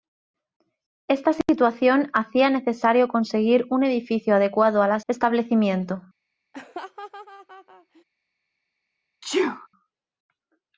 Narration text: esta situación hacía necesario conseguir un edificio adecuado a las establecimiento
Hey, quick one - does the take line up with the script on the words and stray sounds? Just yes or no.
no